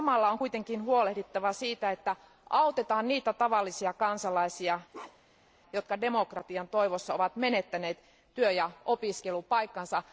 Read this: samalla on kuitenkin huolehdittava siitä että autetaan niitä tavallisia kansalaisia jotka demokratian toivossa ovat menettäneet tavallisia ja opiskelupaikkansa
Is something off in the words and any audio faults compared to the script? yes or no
yes